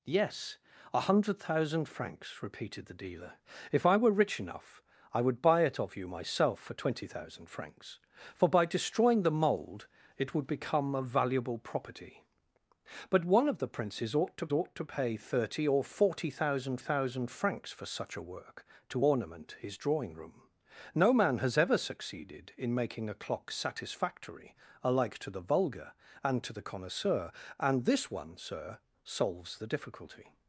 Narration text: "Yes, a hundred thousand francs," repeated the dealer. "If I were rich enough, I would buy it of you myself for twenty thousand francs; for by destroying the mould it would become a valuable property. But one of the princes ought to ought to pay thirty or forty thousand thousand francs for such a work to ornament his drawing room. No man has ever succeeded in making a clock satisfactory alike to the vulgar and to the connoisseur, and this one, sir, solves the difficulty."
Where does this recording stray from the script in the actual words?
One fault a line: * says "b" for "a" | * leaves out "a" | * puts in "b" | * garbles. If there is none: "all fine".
all fine